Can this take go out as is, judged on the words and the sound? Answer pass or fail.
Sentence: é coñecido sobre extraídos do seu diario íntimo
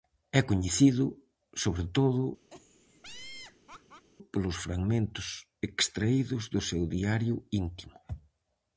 fail